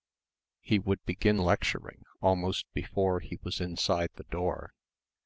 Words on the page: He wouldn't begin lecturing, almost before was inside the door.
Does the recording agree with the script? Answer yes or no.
no